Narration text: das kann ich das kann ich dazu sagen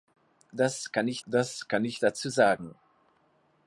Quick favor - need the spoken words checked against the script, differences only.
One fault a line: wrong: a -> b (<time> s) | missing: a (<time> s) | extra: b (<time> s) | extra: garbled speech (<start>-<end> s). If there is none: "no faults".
no faults